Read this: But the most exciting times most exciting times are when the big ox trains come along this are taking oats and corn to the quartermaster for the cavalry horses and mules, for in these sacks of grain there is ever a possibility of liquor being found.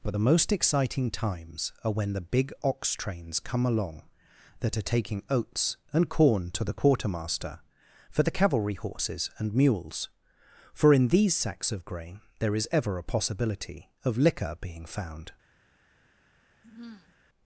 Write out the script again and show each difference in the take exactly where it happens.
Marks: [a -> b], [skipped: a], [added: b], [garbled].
But the most exciting times [skipped: most exciting times] are when the big ox trains come along [this -> that] are taking oats and corn to the quartermaster for the cavalry horses and mules, for in these sacks of grain there is ever a possibility of liquor being found.